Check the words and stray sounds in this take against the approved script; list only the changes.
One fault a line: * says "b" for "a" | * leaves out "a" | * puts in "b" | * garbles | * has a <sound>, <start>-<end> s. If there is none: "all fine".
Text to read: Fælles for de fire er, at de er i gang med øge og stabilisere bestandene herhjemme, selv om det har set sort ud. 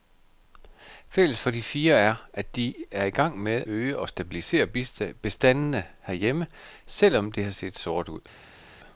all fine